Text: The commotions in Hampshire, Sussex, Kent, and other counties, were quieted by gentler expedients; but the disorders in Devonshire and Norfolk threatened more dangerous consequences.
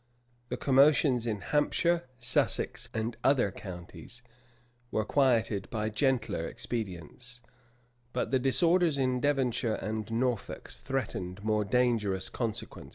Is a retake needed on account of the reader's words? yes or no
yes